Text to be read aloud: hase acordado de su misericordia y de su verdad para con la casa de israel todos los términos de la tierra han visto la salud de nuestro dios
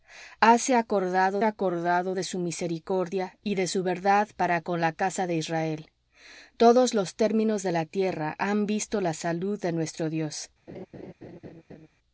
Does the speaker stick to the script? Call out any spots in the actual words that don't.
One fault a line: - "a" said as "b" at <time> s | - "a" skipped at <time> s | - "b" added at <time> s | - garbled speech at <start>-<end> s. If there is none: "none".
- "acordado" added at 1.4 s